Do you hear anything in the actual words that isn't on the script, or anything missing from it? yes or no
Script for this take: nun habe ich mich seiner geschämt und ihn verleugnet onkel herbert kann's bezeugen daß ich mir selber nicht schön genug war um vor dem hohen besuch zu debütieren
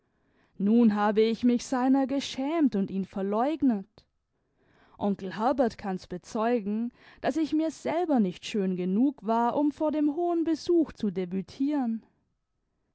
no